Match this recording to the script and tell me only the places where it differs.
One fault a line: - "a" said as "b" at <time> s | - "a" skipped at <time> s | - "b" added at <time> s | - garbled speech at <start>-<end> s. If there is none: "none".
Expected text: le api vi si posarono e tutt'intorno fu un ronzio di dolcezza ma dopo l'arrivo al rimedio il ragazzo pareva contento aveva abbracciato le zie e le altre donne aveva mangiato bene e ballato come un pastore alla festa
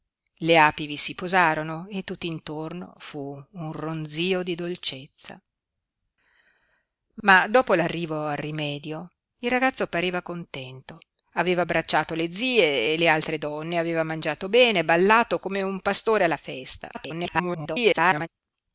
- garbled speech at 16.9-18.3 s